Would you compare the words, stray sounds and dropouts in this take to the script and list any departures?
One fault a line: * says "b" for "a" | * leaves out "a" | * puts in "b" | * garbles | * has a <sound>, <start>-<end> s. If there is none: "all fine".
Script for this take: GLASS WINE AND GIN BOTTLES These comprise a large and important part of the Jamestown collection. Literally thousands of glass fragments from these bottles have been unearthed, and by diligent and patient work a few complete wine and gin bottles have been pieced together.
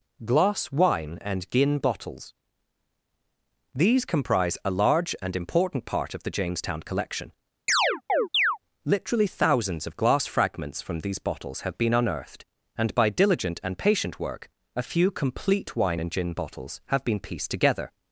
* has a chirp, 7.7-8.6 s